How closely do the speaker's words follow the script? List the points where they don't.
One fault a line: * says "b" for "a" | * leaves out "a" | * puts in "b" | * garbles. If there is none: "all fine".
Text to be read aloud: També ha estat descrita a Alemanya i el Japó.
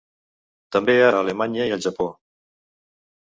* leaves out "estat descrita"